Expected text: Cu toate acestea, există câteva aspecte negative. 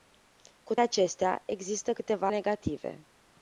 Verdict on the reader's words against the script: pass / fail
fail